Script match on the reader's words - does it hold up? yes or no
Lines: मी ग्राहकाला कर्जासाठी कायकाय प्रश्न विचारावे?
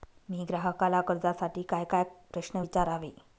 yes